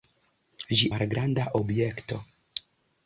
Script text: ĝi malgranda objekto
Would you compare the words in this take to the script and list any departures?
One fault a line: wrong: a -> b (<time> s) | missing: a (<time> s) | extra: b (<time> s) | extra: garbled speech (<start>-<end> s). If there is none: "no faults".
no faults